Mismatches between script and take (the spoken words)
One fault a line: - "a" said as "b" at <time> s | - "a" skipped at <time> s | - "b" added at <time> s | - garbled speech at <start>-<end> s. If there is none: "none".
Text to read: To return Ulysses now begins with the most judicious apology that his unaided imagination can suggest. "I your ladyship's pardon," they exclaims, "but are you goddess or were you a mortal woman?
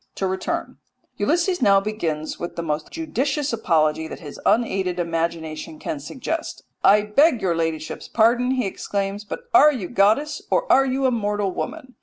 - "beg" added at 7.0 s
- "they" said as "he" at 8.5 s
- "were" said as "are" at 10.7 s